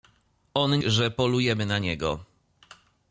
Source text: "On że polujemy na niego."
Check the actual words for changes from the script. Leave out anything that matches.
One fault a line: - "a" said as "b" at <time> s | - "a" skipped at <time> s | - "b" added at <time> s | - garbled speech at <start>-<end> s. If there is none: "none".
none